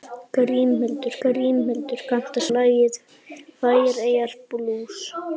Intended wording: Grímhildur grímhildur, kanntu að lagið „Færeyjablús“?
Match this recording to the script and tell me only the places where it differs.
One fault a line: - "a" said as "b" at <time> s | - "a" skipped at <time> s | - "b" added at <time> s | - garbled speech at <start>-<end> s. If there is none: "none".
none